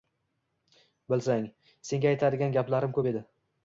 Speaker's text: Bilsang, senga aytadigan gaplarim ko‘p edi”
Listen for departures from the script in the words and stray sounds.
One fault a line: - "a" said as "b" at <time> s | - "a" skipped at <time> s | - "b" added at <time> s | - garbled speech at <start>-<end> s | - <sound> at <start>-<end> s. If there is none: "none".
none